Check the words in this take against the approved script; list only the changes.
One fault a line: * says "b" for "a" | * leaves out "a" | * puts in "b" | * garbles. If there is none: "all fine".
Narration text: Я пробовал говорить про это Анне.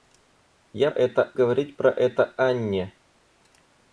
* says "это" for "пробовал"